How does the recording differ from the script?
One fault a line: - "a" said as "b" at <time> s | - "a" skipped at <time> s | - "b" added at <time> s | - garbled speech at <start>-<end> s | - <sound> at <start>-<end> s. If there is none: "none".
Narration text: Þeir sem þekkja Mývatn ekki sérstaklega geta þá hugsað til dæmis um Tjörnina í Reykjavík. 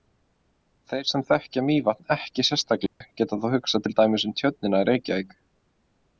- dropout at 2.9-3.0 s